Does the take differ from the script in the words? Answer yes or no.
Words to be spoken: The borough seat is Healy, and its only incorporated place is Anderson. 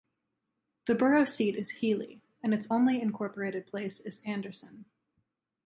no